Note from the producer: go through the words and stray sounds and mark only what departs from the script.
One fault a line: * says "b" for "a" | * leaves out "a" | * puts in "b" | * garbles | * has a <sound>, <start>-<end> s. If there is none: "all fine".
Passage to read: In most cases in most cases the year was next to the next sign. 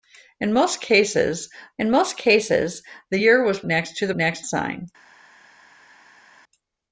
all fine